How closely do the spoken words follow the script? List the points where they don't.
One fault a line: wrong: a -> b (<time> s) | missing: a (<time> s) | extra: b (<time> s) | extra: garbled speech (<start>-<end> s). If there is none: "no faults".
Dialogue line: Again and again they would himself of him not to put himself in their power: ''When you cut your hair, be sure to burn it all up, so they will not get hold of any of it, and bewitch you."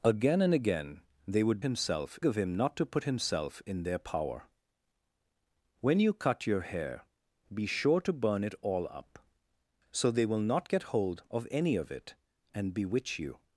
no faults